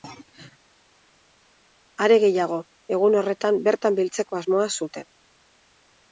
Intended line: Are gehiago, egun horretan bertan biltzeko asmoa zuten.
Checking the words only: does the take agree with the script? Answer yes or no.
yes